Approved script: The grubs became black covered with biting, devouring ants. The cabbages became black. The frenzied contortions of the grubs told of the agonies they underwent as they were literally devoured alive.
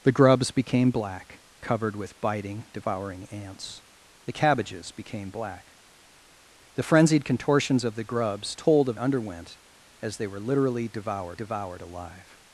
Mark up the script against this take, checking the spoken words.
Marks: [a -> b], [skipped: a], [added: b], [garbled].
The grubs became black covered with biting, devouring ants. The cabbages became black. The frenzied contortions of the grubs told of [skipped: the agonies they] underwent as they were literally devoured [added: devoured] alive.